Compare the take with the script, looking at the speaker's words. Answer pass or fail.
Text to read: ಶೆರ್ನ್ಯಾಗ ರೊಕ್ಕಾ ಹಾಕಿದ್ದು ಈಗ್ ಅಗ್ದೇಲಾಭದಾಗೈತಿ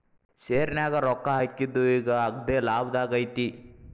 pass